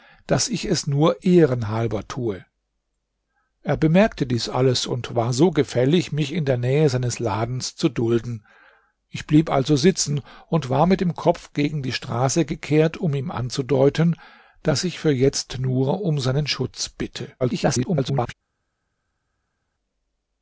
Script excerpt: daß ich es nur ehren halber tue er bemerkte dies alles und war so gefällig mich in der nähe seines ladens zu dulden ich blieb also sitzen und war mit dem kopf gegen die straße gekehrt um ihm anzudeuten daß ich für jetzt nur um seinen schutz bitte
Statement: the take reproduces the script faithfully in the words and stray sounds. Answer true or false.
false